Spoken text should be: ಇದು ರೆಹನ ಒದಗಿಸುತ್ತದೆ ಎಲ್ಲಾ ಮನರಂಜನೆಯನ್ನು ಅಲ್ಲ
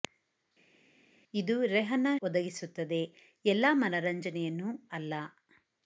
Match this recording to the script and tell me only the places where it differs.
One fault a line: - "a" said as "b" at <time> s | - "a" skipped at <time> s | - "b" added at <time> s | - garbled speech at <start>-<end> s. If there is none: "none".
none